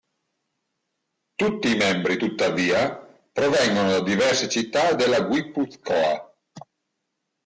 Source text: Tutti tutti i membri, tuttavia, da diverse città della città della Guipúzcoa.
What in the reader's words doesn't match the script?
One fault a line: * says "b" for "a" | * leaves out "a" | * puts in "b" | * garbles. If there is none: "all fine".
* leaves out "tutti"
* puts in "provengono"
* leaves out "città della"